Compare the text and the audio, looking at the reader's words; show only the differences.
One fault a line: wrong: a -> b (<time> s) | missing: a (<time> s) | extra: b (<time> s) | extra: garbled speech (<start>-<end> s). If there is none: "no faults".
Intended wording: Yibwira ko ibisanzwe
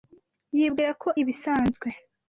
no faults